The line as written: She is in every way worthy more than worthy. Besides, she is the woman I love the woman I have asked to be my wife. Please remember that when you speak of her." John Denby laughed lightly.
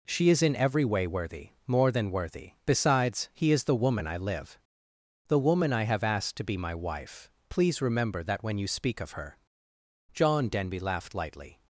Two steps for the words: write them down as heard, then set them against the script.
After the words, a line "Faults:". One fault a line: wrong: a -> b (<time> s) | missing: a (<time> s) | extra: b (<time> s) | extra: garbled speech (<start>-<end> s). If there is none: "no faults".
She is in every way worthy more than worthy. Besides, he is the woman I live the woman I have asked to be my wife. Please remember that when you speak of her." John Denby laughed lightly.
Faults:
wrong: she -> he (3.3 s)
wrong: love -> live (4.2 s)